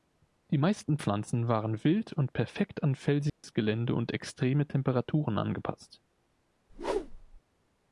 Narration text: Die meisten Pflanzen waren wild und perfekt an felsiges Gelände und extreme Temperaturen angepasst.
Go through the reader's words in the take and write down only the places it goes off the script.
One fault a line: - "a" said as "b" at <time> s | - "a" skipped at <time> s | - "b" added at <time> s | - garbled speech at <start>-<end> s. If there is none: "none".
none